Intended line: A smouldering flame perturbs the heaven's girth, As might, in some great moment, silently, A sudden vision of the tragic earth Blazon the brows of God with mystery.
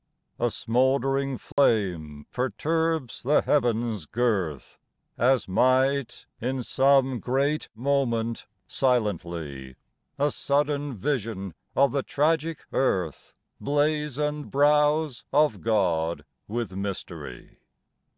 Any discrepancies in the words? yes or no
yes